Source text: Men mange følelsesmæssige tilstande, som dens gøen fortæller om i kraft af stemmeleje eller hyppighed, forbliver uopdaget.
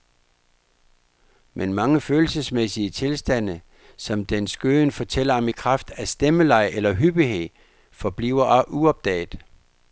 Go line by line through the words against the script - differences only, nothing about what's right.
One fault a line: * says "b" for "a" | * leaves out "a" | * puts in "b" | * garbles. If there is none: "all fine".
all fine